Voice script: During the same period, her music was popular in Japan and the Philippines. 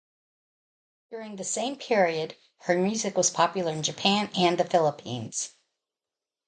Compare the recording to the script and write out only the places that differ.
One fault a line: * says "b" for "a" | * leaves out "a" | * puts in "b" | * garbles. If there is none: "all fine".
all fine